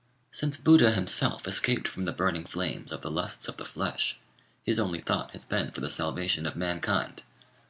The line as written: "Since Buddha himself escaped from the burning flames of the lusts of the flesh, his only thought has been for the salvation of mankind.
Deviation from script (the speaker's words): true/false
false